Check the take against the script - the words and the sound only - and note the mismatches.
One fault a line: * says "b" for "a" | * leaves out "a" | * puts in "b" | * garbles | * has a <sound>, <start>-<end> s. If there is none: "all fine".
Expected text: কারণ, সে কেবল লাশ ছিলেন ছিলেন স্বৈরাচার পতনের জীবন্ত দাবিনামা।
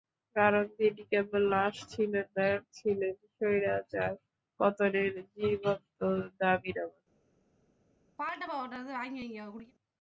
* says "তিনি" for "সে"
* puts in "না"
* has a throat clearing, 8.2-9.7 s